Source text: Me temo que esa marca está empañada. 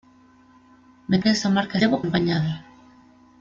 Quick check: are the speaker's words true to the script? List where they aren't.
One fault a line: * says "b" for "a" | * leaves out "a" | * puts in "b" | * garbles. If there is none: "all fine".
* leaves out "temo"
* says "temo" for "está"